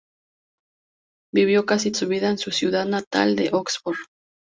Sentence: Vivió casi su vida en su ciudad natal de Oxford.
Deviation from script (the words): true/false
false